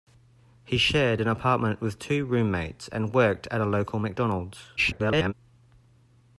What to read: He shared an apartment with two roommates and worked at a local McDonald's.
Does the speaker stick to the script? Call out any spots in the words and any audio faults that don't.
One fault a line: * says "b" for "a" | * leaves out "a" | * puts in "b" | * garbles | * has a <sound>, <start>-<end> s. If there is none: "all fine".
* garbles